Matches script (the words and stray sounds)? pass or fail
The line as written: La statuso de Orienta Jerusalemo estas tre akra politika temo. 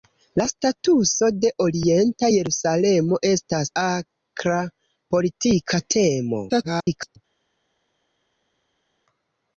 fail